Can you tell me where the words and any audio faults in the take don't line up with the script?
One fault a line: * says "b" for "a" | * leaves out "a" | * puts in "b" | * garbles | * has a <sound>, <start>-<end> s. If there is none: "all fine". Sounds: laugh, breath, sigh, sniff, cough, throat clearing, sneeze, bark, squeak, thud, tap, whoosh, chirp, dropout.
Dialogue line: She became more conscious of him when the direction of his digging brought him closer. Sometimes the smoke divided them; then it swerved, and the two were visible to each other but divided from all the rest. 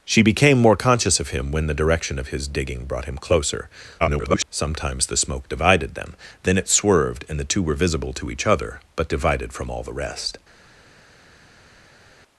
* garbles